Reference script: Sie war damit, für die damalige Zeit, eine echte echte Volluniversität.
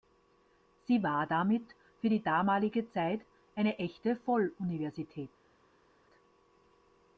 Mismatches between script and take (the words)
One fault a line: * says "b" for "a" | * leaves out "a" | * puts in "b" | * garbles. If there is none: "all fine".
* leaves out "echte"